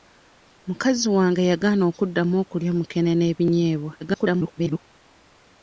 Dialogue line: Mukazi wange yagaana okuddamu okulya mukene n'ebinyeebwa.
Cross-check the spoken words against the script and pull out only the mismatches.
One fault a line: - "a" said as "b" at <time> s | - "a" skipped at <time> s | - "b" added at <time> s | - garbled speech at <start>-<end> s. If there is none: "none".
- garbled speech at 4.0-4.8 s